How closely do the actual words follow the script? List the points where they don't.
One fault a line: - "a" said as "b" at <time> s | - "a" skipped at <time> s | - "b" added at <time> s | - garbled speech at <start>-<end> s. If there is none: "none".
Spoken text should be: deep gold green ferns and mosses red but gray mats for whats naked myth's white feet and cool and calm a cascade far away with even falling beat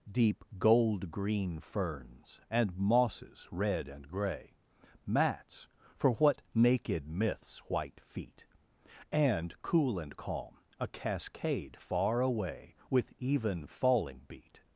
- "but" said as "and" at 3.9 s
- "whats" said as "what" at 6.1 s